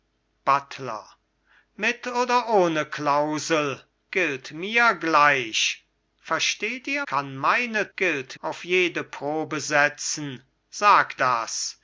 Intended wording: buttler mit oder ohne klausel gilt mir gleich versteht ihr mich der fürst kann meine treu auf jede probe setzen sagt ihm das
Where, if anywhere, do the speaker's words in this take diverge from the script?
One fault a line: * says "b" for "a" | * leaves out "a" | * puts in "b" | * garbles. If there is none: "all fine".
* leaves out "mich der fürst"
* says "gilt" for "treu"
* leaves out "ihm"